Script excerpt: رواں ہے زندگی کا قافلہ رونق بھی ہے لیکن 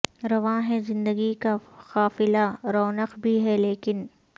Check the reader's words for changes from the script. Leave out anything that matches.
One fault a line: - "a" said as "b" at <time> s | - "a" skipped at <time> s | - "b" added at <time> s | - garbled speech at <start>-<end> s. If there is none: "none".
none